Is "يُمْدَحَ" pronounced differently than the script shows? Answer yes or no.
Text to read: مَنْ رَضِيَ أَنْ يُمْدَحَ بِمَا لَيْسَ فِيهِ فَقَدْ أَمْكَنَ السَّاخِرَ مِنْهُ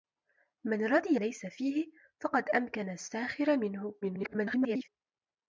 yes